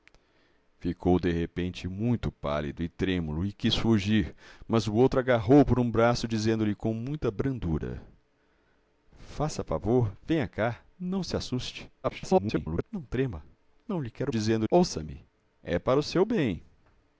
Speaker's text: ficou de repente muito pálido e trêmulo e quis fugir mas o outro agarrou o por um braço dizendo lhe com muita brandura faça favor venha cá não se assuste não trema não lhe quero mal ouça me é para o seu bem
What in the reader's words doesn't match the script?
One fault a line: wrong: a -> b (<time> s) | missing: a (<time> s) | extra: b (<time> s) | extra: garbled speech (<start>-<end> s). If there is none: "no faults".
extra: garbled speech (12.0-12.8 s)
wrong: mal -> dizendo (14.3 s)